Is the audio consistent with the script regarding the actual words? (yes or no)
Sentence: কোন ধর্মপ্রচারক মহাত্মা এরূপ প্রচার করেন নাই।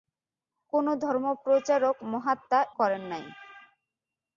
no